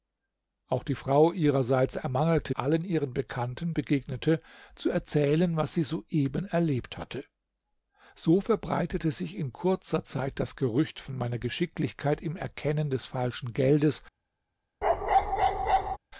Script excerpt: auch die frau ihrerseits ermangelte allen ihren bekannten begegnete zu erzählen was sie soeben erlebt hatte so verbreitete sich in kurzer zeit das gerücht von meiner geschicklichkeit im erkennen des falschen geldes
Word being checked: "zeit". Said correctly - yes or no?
yes